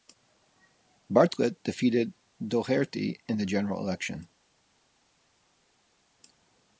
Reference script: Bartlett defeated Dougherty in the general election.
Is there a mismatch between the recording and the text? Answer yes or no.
no